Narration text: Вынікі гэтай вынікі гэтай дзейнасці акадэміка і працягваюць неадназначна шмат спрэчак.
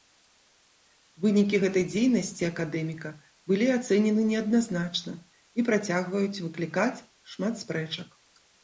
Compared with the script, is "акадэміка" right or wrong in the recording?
wrong